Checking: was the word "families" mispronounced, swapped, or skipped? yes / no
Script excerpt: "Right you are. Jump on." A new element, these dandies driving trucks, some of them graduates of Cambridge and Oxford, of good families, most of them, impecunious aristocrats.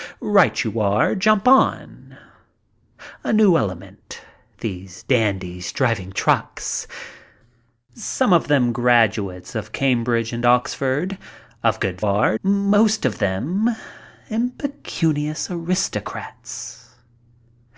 yes